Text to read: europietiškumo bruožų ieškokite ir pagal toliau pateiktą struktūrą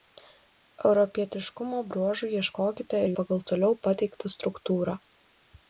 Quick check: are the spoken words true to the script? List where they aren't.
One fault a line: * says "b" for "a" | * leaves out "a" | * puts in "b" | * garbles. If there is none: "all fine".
all fine